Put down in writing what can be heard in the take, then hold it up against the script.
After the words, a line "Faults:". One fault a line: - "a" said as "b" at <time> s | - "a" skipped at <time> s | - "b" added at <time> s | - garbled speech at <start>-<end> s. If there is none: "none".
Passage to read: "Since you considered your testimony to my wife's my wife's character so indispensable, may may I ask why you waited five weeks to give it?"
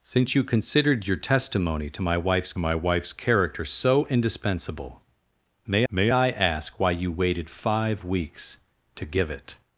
"Since you considered your testimony to my wife's my wife's character so indispensable, may may I ask why you waited five weeks to give it?"
Faults:
none